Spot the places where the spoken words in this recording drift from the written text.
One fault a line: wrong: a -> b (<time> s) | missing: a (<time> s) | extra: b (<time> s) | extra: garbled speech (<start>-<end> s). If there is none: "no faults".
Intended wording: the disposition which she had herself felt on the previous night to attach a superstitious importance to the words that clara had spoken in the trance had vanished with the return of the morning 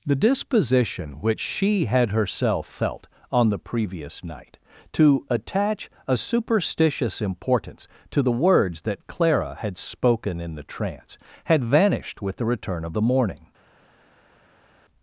no faults